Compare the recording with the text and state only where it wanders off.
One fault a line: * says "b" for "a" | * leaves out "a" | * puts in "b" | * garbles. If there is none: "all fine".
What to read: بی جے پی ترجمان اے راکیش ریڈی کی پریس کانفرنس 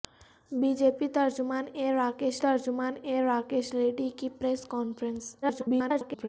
* puts in "ترجمان اے راکیش"
* garbles